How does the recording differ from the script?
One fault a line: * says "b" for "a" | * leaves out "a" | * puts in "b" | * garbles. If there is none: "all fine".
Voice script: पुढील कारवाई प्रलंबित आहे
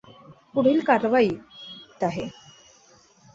* leaves out "प्रलंबित"